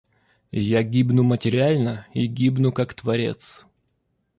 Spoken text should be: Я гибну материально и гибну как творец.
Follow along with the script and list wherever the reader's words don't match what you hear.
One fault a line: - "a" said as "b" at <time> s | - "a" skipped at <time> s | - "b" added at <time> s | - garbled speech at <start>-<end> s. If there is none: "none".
none